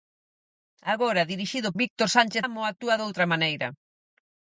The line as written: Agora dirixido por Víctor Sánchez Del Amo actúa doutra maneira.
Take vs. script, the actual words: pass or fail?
fail